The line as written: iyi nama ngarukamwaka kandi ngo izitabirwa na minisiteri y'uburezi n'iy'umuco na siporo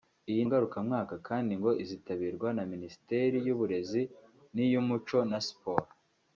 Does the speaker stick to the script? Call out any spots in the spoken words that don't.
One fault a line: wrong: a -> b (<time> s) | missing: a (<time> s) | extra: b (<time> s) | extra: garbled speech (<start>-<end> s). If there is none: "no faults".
missing: nama (0.4 s)